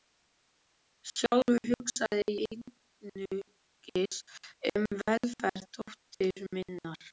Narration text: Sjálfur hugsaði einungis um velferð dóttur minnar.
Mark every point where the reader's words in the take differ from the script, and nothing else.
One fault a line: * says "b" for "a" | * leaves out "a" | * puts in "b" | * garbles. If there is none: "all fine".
all fine